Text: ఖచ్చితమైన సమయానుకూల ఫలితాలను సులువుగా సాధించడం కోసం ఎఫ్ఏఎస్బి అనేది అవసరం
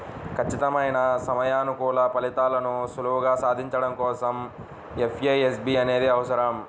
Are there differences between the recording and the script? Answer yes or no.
no